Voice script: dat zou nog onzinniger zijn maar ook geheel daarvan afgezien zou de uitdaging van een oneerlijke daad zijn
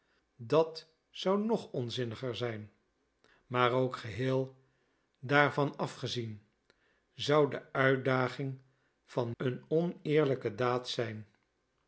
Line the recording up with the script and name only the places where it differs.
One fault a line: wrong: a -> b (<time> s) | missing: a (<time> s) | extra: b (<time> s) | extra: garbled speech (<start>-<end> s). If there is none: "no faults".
no faults